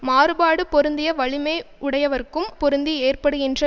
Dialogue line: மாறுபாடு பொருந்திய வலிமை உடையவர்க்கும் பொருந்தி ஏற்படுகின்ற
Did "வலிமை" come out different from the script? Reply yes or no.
no